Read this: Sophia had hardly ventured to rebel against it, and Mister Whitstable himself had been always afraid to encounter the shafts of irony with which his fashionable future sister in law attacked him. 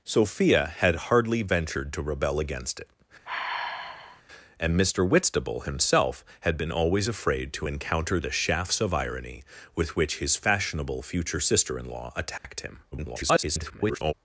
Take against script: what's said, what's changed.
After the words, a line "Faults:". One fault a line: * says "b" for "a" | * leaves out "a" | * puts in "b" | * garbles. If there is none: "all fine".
Sophia had hardly ventured to rebel against it, and Mister Whitstable himself had been always afraid to encounter the shafts of irony with which his fashionable future sister in law attacked him. [garbled]
Faults:
* garbles